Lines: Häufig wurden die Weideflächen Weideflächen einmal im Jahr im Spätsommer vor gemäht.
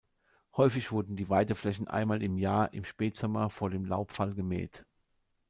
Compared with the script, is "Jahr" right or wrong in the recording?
right